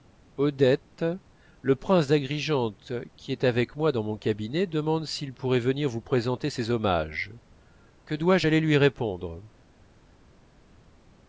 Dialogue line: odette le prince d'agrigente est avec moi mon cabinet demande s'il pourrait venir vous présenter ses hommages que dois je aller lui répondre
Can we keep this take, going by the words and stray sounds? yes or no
no